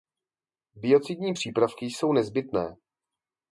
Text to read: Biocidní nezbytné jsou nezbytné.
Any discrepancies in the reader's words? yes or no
yes